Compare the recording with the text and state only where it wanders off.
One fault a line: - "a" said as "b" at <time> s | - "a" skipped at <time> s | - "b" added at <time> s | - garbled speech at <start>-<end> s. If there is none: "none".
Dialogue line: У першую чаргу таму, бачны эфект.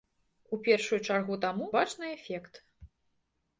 none